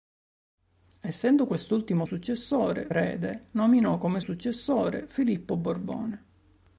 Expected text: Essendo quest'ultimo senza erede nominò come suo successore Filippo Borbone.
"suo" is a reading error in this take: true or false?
true